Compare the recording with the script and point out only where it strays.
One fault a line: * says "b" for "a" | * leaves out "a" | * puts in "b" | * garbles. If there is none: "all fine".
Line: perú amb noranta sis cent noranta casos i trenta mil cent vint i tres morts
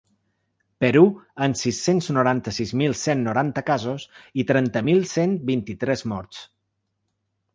* puts in "sis cents"
* puts in "mil"